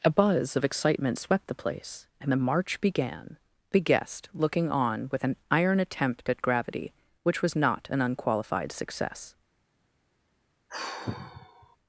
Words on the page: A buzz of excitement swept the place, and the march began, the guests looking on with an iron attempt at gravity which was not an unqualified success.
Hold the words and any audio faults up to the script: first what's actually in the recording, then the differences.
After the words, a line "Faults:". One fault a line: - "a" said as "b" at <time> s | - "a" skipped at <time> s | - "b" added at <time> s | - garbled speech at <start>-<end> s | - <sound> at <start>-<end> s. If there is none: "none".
A buzz of excitement swept the place, and the march began, the guest looking on with an iron attempt at gravity which was not an unqualified success.
Faults:
- "guests" said as "guest" at 3.8 s
- sigh at 10.7-11.8 s